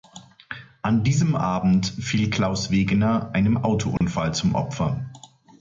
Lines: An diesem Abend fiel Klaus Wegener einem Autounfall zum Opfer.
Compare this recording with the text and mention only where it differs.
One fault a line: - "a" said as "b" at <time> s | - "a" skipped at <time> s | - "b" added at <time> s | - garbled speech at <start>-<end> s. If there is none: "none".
none